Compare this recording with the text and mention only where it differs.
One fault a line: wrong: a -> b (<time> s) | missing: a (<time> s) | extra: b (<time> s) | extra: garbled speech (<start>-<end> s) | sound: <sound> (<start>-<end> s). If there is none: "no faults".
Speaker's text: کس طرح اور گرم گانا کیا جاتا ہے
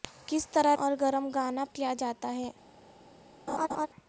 sound: laugh (3.5-3.9 s)